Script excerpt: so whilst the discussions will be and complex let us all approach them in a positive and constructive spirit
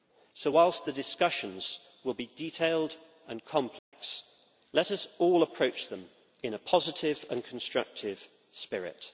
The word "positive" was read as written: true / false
true